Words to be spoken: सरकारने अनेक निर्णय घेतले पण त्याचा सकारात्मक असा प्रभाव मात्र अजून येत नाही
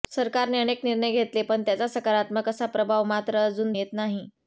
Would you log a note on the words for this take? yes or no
no